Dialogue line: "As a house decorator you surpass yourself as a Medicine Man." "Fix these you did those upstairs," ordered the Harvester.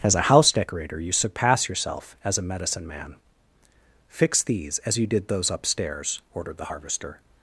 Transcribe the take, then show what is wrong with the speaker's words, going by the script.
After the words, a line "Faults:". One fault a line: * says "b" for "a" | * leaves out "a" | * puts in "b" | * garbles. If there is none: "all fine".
"As a house decorator you surpass yourself as a Medicine Man." "Fix these as you did those upstairs," ordered the Harvester.
Faults:
* puts in "as"